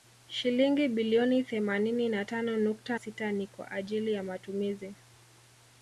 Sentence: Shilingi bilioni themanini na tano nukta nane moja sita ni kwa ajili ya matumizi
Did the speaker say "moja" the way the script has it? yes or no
no